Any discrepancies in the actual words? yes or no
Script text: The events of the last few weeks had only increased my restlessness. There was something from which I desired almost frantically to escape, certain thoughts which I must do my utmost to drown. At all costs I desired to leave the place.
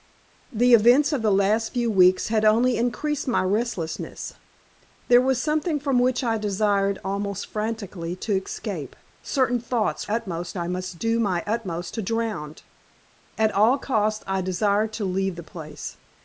yes